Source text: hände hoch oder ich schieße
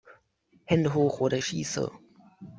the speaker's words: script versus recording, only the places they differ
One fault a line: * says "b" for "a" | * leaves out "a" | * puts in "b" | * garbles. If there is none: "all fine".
all fine